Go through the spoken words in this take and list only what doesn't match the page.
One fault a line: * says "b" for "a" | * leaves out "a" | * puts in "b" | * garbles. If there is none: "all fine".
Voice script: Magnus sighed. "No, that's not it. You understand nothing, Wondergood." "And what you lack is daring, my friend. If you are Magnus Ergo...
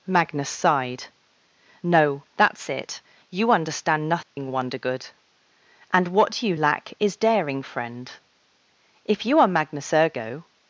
* leaves out "not"
* leaves out "my"